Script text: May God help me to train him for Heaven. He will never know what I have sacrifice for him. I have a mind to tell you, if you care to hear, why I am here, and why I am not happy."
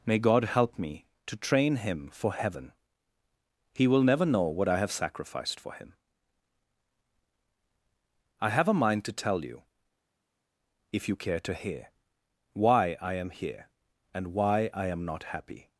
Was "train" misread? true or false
false